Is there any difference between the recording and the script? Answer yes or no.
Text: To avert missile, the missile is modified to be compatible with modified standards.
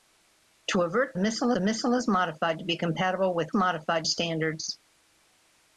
no